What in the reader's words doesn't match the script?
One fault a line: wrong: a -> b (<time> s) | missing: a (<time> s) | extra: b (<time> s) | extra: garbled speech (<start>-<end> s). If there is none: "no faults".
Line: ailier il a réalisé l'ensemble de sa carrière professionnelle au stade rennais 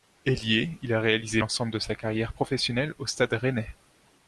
no faults